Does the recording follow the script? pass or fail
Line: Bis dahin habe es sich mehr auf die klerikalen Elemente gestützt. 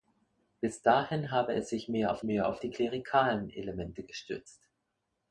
fail